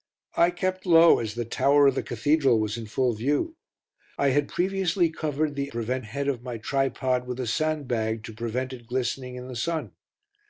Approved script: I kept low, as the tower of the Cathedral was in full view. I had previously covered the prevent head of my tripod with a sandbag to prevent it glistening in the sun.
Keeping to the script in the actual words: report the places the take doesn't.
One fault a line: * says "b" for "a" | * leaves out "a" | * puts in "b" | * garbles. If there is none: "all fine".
all fine